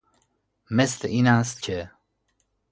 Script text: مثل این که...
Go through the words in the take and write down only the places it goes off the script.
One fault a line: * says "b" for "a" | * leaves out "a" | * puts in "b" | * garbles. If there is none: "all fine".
* puts in "است"